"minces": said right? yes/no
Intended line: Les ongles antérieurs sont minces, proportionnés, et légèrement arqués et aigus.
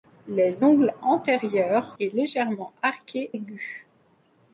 no